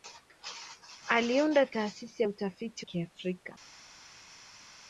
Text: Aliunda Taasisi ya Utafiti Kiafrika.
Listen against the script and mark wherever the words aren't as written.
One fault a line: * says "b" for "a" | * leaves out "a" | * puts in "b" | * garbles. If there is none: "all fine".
all fine